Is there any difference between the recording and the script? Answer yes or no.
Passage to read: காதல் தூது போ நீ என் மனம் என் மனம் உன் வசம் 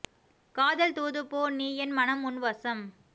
yes